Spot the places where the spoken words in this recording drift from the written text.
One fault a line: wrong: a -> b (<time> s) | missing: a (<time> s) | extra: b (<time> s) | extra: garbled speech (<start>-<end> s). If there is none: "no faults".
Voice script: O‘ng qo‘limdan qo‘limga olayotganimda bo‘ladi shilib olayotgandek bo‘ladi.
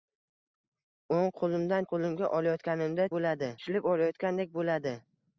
no faults